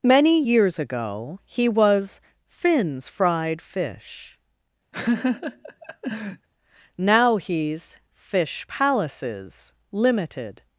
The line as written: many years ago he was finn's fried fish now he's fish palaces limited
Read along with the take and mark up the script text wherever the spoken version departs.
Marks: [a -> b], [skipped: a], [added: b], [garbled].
many years ago he was finn's fried fish now he's fish palaces limited